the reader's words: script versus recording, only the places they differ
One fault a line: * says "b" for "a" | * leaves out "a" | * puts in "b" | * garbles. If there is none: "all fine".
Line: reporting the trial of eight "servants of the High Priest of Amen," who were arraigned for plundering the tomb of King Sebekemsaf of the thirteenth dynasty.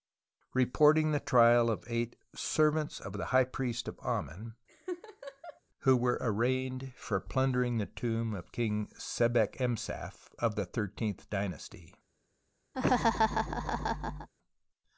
all fine